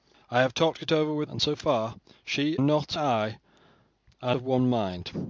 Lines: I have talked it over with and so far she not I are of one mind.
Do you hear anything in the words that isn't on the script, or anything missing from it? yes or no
no